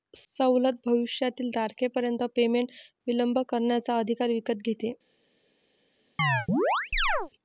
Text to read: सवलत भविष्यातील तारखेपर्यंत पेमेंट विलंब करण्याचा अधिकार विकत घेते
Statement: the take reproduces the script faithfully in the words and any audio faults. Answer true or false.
false